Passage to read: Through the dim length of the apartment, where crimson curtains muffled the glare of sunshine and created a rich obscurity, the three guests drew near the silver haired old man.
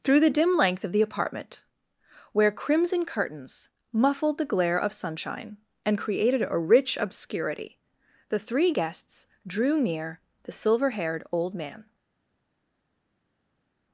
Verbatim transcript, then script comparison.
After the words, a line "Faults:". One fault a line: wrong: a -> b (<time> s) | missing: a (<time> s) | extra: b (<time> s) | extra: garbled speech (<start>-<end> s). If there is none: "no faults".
Through the dim length of the apartment, where crimson curtains muffled the glare of sunshine and created a rich obscurity, the three guests drew near the silver haired old man.
Faults:
no faults